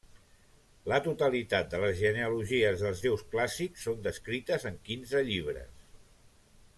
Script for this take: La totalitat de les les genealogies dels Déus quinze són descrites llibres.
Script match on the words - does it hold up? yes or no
no